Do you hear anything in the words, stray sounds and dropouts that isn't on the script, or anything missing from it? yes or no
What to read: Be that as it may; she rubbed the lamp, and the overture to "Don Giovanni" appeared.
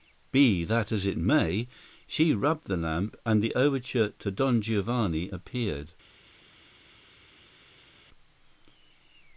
no